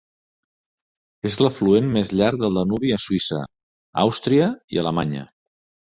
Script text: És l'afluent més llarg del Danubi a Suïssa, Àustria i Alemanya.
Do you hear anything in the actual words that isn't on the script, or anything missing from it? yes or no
no